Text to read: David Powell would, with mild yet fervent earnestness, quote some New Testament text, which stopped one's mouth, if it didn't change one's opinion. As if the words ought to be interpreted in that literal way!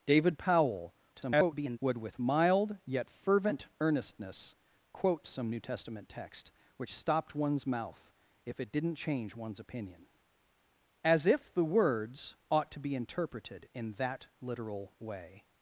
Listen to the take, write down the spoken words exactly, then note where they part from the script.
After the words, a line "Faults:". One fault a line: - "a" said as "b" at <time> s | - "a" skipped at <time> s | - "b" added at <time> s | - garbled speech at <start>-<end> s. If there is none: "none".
David Powell [garbled] would, with mild yet fervent earnestness, quote some New Testament text, which stopped one's mouth, if it didn't change one's opinion. As if the words ought to be interpreted in that literal way!
Faults:
- garbled speech at 1.1-1.8 s